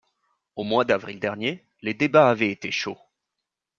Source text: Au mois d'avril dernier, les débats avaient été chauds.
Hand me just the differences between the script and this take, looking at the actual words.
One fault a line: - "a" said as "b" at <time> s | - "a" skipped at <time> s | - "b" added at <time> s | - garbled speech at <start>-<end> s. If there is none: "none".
none